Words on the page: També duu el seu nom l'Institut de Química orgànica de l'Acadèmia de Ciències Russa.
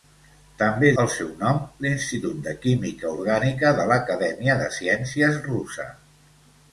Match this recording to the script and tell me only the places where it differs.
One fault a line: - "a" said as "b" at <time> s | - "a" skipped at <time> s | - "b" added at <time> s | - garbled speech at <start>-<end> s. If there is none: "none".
- "duu" skipped at 0.9 s